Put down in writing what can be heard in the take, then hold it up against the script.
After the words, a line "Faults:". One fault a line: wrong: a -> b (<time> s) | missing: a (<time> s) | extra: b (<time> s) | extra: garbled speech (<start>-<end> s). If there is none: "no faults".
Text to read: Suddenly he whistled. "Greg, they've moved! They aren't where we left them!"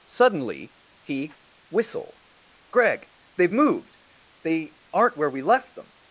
Suddenly he whistle. "Greg, they've moved! They aren't where we left them!"
Faults:
wrong: whistled -> whistle (1.7 s)